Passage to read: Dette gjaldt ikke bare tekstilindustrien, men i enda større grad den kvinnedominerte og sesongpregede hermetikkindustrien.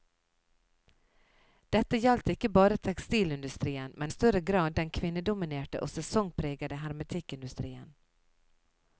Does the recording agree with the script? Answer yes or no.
no